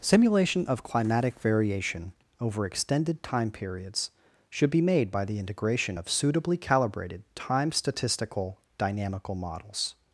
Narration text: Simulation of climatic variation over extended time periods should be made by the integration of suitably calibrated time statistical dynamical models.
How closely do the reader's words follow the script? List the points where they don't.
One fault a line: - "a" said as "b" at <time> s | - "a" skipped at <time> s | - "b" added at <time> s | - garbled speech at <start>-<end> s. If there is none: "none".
none